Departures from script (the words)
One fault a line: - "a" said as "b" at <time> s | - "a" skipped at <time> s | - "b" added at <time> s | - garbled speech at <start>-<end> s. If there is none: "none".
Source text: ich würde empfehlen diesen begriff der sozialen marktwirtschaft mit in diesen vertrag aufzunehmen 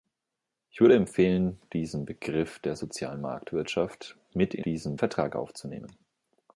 none